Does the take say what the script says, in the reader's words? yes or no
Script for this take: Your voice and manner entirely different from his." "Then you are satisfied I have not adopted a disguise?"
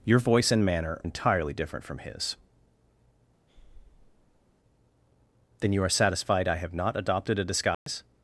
yes